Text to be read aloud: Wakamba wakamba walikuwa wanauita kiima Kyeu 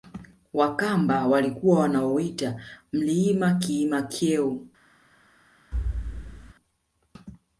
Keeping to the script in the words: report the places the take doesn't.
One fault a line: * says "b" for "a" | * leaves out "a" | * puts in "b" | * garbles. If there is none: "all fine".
* leaves out "wakamba"
* puts in "mlima"